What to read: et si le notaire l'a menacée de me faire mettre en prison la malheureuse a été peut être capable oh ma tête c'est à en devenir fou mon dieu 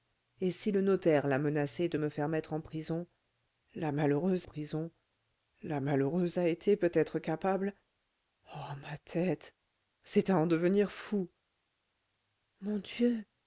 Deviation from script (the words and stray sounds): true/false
true